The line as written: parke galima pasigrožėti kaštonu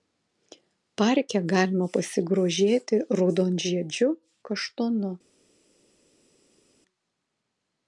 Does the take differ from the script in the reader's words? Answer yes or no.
yes